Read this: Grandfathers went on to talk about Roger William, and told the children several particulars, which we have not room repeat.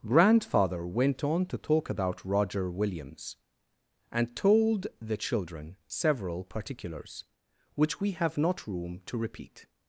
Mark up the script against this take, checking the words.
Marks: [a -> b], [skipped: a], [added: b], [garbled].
[Grandfathers -> Grandfather] went on to talk about Roger [William, -> Williams] and told the children several particulars, which we have not room [added: to] repeat.